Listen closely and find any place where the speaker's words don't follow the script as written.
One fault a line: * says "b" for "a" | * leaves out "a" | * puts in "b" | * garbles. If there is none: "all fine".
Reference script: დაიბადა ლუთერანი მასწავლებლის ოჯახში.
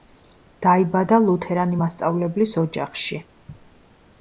all fine